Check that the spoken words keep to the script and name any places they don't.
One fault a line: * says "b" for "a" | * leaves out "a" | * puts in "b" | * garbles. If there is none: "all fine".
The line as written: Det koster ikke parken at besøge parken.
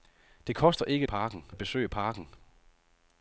all fine